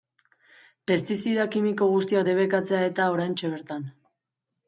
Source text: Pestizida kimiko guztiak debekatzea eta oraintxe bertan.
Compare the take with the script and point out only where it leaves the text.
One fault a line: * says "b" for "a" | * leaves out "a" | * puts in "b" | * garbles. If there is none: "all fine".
all fine